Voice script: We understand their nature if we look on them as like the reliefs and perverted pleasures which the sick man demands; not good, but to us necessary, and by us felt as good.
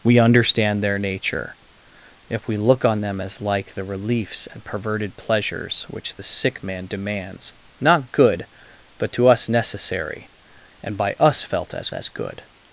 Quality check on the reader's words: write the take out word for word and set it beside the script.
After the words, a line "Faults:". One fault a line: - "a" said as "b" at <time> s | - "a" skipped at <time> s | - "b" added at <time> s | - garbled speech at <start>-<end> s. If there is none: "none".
We understand their nature if we look on them as like the reliefs and perverted pleasures which the sick man demands; not good, but to us necessary, and by us felt as as good.
Faults:
- "as" added at 11.9 s